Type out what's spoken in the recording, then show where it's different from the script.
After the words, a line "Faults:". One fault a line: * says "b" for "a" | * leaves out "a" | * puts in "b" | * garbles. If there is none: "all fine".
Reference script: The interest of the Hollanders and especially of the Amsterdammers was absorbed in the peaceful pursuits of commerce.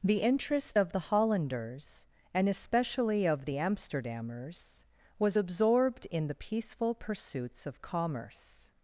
The interest of the Hollanders and especially of the Amsterdammers was absorbed in the peaceful pursuits of commerce.
Faults:
all fine